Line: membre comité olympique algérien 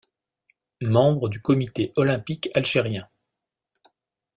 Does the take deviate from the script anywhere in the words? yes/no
yes